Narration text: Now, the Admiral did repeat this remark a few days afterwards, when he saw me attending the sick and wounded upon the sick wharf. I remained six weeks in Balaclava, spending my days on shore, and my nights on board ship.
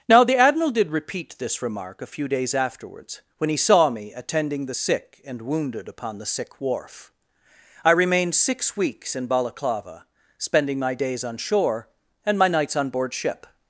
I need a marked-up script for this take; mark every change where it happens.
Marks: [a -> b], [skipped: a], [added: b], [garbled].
Now, the Admiral did repeat this remark a few days afterwards, when he saw me attending the sick and wounded upon the sick wharf. I remained six weeks in Balaclava, spending my days on shore, and my nights on board ship.